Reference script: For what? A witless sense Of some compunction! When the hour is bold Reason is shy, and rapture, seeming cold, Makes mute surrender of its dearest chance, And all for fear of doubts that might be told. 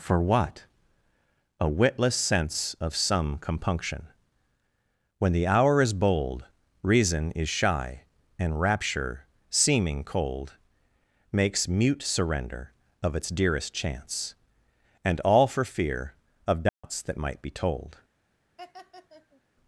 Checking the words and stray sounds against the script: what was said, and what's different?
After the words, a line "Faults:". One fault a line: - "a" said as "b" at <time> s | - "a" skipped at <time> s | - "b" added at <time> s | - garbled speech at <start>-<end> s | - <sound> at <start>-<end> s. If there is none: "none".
For what? A witless sense Of some compunction! When the hour is bold Reason is shy, and rapture, seeming cold, Makes mute surrender of its dearest chance, And all for fear of doubts that might be told.
Faults:
- dropout at 16.7-16.8 s
- laugh at 18.6-19.4 s